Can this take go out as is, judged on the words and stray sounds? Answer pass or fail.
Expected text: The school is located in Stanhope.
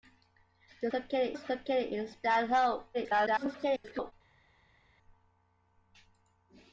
fail